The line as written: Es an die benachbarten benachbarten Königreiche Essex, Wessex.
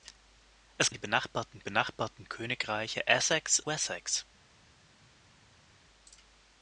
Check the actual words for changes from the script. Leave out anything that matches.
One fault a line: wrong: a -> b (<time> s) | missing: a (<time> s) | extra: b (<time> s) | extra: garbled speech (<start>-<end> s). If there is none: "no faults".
no faults